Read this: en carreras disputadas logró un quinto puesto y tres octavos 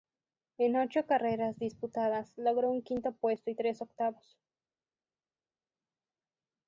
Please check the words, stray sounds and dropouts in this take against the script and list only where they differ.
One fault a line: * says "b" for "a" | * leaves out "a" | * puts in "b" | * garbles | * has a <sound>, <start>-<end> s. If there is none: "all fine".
* puts in "ocho"